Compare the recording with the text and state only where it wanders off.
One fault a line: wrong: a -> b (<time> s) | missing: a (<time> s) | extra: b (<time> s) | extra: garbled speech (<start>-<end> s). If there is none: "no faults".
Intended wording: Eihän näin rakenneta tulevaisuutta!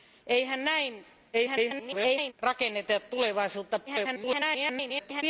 extra: garbled speech (1.3-2.3 s)
extra: garbled speech (3.9-5.2 s)